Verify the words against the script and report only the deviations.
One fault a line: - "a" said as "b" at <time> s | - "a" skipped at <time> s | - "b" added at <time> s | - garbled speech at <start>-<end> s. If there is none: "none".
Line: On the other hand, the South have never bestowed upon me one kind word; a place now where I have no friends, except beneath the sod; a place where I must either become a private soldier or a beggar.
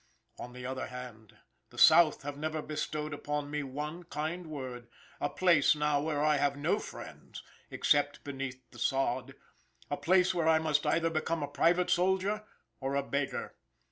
none